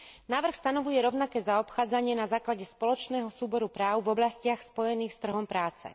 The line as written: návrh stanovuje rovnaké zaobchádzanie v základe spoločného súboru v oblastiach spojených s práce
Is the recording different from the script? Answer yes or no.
yes